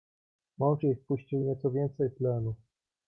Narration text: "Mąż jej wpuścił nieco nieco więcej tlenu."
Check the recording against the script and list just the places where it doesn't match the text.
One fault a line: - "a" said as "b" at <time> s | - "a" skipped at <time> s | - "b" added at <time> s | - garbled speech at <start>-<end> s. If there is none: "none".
- "nieco" skipped at 1.7 s